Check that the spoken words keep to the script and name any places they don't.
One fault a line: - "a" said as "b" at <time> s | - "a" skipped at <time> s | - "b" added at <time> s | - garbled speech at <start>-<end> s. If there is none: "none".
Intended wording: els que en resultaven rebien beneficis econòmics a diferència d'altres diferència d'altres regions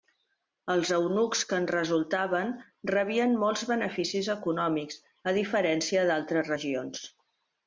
- "eunucs" added at 0.9 s
- "molts" added at 3.4 s
- "diferència d'altres" skipped at 6.5 s